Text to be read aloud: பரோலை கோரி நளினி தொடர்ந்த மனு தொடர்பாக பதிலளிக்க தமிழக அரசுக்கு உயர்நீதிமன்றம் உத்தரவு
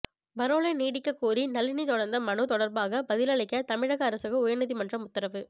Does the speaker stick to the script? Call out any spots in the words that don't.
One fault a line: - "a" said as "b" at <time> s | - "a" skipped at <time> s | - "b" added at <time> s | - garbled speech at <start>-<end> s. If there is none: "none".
- "நீட்டிக்க" added at 0.8 s